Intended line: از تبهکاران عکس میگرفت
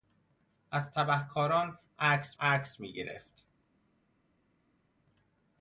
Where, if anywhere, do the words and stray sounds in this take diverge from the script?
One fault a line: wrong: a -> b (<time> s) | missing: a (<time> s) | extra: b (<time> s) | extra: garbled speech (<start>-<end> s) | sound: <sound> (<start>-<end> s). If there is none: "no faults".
extra: عکس (2.4 s)